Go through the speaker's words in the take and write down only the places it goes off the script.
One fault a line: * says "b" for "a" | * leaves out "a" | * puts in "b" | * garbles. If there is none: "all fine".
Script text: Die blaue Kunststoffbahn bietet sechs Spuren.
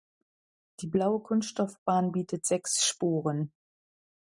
all fine